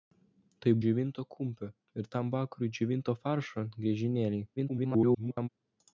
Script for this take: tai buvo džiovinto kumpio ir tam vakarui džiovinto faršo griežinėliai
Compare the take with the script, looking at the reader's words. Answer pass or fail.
fail